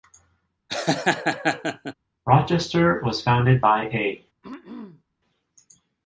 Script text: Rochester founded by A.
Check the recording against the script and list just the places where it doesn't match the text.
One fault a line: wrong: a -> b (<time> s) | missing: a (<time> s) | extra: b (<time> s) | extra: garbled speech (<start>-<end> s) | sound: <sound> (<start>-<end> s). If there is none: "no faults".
sound: laugh (0.7-1.9 s)
extra: was (3.0 s)
sound: throat clearing (4.4-5.0 s)